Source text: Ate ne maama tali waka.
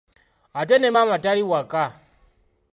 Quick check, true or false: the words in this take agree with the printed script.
true